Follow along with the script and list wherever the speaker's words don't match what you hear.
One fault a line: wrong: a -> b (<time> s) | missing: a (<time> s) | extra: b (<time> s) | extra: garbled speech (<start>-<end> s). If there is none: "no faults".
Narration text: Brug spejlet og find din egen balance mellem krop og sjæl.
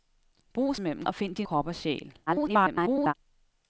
wrong: spejlet -> mellem (0.8 s)
missing: egen balance mellem (1.5 s)
extra: garbled speech (2.3-3.1 s)